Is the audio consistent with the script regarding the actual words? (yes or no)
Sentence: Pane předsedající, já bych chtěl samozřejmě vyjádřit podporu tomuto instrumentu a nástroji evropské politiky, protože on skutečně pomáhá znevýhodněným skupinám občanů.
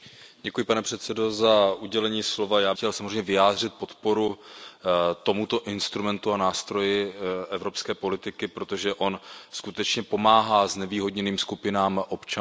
no